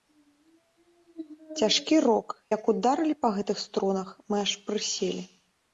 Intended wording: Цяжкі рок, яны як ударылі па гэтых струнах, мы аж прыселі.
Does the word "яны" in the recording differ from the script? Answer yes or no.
yes